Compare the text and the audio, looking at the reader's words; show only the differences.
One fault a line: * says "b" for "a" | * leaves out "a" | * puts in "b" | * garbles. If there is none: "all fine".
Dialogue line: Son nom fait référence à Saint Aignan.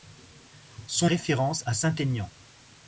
* leaves out "nom fait"